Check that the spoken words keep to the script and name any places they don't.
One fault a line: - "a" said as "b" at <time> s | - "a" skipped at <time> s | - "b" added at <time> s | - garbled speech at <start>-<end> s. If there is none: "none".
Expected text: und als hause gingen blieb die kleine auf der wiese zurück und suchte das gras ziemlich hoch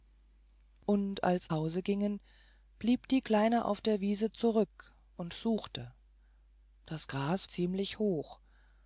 none